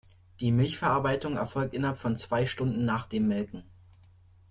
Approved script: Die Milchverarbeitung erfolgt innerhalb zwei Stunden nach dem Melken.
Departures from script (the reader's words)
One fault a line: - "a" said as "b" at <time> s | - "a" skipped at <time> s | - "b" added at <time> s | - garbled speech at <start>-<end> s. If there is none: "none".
- "von" added at 2.0 s